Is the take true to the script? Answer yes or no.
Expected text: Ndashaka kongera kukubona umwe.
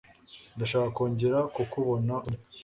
yes